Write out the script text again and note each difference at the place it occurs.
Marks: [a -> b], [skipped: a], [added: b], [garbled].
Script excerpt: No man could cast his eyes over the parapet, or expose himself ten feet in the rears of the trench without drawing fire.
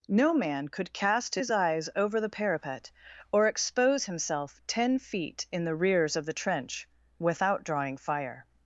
No man could cast his eyes over the parapet, or expose himself ten feet in the rears of the trench without drawing fire.